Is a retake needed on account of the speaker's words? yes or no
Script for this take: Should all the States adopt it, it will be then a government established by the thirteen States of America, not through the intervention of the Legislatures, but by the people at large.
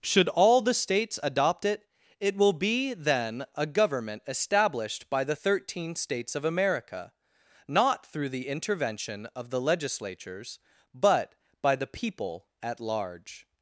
no